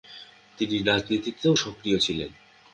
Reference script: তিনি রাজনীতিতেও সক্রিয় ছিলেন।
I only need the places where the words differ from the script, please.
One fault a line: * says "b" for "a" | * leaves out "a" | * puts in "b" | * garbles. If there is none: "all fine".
all fine